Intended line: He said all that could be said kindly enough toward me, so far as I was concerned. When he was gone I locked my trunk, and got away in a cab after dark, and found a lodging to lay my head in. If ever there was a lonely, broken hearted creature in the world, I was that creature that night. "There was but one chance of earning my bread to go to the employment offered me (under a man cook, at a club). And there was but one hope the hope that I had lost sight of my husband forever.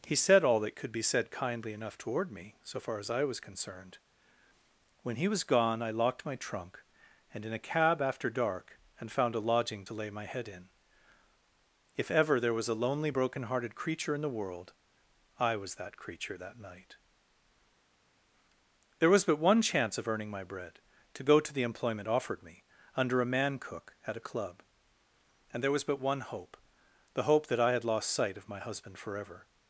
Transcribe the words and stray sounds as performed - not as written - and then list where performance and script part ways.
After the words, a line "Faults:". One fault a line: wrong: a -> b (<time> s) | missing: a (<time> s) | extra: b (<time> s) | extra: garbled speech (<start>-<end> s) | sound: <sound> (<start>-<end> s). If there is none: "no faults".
He said all that could be said kindly enough toward me, so far as I was concerned. When he was gone I locked my trunk, and in a cab after dark, and found a lodging to lay my head in. If ever there was a lonely, broken hearted creature in the world, I was that creature that night. "There was but one chance of earning my bread to go to the employment offered me (under a man cook, at a club). And there was but one hope the hope that I had lost sight of my husband forever.
Faults:
missing: got away (7.5 s)